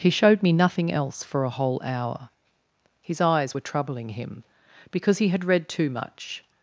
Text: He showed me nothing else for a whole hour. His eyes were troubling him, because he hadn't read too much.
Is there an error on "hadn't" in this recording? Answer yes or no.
yes